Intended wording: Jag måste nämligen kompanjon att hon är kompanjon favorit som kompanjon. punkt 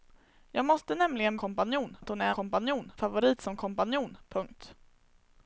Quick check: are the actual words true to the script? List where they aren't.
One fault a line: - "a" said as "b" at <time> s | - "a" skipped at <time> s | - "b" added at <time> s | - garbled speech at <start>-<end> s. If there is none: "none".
none